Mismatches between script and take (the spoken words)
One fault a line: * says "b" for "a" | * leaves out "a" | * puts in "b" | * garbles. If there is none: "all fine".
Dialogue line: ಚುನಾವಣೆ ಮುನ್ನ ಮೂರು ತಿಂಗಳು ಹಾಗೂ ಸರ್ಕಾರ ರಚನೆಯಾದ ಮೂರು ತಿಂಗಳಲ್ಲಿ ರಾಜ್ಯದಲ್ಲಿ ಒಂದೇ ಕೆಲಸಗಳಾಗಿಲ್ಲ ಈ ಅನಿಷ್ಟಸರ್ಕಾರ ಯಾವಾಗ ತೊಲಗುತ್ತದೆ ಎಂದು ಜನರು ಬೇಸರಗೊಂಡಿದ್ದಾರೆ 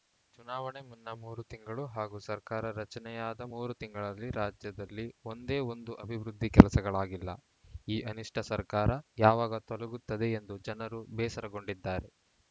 * puts in "ಒಂದು ಅಭಿವೃದ್ಧಿ"